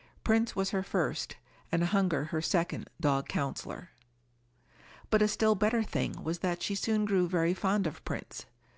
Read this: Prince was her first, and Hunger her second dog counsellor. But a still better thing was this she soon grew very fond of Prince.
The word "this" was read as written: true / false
false